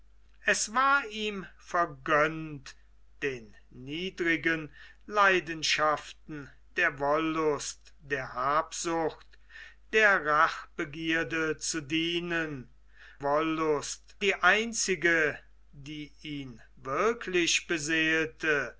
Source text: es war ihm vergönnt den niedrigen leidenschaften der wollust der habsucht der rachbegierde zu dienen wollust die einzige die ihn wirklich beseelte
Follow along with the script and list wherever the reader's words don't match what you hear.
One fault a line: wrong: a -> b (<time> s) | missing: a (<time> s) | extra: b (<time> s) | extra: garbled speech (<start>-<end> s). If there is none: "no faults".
no faults